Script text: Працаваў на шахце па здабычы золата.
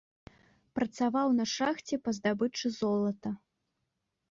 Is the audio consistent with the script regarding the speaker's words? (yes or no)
yes